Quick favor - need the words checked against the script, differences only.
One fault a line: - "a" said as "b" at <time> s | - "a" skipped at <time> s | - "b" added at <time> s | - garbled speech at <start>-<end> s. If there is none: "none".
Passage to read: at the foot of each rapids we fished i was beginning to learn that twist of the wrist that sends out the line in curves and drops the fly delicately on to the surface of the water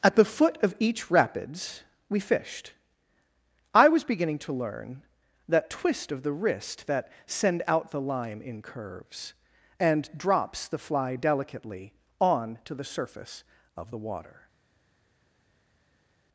- "sends" said as "send" at 7.3 s